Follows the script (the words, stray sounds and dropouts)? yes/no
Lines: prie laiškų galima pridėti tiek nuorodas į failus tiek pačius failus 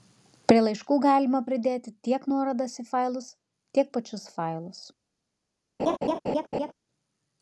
no